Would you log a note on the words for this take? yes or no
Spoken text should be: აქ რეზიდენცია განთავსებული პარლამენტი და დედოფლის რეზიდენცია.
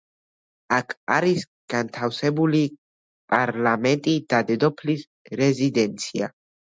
yes